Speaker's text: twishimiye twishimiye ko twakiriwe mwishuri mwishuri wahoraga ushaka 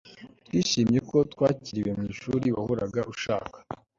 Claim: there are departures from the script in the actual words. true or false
true